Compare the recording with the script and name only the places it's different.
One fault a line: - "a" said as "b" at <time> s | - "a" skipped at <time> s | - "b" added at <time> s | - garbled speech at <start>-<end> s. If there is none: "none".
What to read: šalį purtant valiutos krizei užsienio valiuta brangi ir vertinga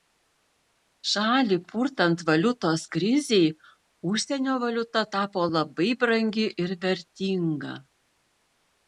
- "tapo labai" added at 5.1 s